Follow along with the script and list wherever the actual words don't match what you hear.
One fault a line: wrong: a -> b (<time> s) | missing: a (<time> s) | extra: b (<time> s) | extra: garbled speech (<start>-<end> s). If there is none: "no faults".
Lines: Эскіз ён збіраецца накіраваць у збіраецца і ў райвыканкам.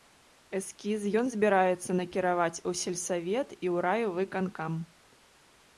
wrong: збіраецца -> сельсавет (2.8 s)